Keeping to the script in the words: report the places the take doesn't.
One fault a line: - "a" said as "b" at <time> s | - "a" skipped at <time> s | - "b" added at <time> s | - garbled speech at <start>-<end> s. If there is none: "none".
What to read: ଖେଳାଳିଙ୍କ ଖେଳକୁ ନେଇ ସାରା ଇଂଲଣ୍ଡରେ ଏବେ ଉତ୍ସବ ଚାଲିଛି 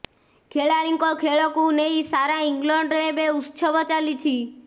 none